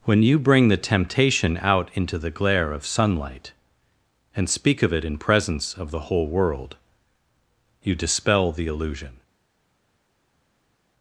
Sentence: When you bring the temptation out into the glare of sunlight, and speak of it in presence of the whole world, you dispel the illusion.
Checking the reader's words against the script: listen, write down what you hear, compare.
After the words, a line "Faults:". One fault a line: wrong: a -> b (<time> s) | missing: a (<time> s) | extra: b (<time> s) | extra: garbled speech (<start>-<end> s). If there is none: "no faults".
When you bring the temptation out into the glare of sunlight, and speak of it in presence of the whole world, you dispel the illusion.
Faults:
no faults